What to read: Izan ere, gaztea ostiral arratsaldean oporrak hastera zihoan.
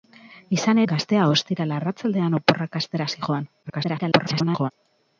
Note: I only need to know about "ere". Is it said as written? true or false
false